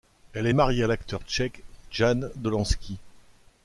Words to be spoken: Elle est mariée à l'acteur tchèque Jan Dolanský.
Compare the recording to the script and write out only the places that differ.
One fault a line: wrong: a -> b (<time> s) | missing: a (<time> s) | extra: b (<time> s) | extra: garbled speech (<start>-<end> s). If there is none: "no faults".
no faults